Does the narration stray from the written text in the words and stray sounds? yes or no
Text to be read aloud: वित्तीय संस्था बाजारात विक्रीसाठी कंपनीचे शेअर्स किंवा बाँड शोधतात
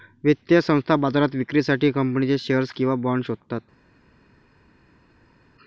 no